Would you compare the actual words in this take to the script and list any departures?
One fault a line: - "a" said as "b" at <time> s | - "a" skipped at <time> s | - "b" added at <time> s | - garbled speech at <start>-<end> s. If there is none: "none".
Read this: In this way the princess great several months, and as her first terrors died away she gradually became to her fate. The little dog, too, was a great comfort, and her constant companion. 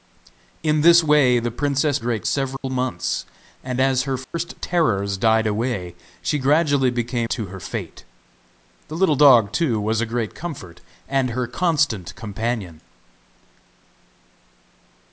none